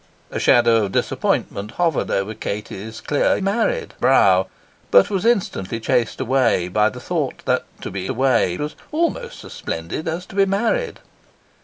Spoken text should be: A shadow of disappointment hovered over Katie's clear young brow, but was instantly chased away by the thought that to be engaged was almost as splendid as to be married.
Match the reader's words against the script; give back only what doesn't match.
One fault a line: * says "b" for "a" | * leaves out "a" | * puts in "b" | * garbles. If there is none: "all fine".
* says "married" for "young"
* says "away" for "engaged"